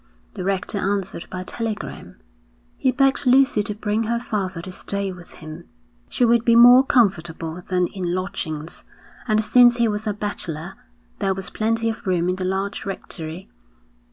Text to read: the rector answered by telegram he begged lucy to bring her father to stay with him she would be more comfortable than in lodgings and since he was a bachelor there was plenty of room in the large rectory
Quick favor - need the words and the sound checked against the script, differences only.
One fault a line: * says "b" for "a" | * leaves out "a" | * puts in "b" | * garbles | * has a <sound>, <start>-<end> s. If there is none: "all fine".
all fine